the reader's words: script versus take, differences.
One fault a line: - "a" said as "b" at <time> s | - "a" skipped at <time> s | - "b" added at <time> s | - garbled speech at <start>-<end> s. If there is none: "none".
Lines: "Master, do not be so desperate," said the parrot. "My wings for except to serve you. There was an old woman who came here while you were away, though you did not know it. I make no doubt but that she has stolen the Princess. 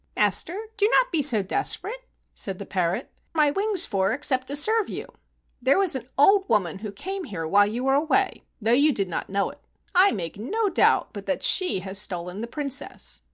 none